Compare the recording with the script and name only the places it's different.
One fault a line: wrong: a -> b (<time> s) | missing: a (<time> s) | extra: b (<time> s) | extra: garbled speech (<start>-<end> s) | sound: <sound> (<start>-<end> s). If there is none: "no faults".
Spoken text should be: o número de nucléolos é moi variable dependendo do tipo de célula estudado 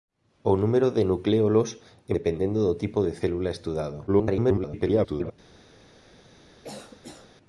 missing: moi variable (2.1 s)
extra: garbled speech (4.1-5.3 s)
sound: cough (6.6-7.3 s)